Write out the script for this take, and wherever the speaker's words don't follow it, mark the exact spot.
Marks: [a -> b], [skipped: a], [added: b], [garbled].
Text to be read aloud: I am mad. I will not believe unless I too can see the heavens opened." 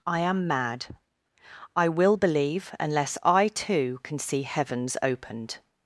I am mad. I will [skipped: not] believe unless I too can see [skipped: the] heavens opened."